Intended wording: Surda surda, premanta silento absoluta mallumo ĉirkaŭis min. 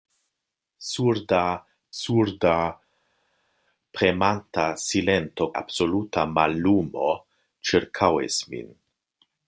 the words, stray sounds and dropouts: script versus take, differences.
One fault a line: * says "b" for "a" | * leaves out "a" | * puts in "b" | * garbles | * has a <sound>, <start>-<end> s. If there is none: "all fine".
all fine